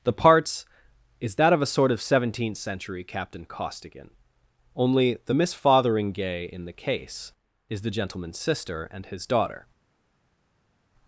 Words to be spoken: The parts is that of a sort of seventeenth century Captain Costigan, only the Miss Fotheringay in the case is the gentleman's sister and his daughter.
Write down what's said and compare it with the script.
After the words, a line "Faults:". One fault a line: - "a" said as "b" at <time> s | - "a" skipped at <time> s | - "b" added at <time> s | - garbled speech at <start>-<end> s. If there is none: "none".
The parts is that of a sort of seventeenth century Captain Costigan, only the Miss Fotheringay in the case is the gentleman's sister and his daughter.
Faults:
none